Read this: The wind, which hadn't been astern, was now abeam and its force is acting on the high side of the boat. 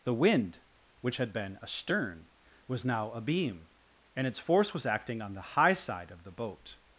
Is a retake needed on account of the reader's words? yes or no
yes